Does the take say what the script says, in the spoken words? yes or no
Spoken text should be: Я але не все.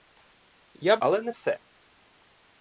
yes